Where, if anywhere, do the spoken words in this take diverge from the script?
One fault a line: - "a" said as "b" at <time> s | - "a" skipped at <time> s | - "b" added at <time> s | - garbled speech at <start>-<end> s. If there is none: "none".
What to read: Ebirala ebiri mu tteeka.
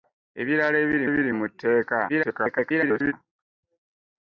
- "ebiri" added at 1.1 s
- garbled speech at 2.1-3.1 s